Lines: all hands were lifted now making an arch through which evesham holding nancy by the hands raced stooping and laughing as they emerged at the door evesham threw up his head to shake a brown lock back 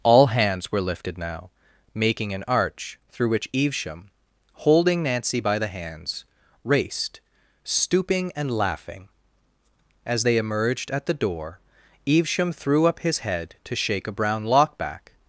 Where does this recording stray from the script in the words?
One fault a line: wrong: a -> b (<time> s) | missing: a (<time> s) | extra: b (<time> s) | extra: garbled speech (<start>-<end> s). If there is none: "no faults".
no faults